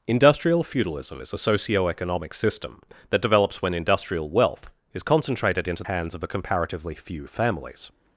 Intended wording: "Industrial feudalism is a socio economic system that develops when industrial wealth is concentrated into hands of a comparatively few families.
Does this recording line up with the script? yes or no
yes